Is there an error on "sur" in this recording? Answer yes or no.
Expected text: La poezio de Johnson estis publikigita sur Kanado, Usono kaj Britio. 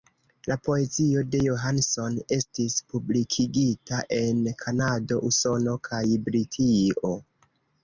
yes